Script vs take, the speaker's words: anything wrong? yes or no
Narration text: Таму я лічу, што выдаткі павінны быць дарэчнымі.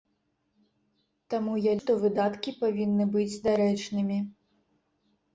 yes